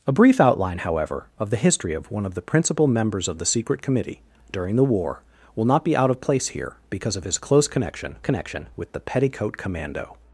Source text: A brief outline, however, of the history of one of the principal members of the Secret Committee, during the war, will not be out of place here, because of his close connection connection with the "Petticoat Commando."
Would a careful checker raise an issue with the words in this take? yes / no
no